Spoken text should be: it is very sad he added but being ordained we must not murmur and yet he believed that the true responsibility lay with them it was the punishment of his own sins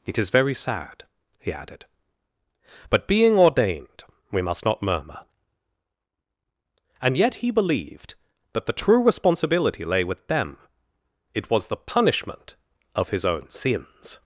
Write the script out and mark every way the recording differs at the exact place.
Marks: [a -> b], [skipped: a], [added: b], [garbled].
it is very sad he added but being ordained we must not murmur and yet he believed that the true responsibility lay with them it was the punishment of his own sins